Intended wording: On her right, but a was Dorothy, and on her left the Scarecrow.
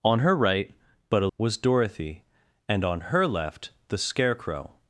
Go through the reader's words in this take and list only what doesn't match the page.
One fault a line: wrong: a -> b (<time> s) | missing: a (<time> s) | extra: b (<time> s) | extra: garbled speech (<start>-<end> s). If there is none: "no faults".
no faults